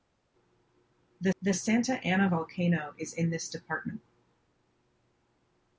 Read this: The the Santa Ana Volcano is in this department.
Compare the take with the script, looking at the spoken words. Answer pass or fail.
pass